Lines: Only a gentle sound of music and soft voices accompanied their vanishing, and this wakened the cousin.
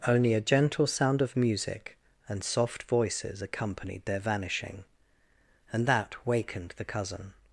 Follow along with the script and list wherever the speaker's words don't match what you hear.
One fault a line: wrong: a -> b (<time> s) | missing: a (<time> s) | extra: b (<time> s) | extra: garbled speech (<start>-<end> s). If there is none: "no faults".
wrong: this -> that (5.8 s)